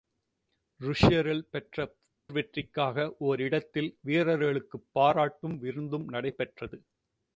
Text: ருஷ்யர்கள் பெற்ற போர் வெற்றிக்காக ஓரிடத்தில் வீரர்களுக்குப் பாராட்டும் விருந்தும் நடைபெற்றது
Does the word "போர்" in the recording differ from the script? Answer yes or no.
yes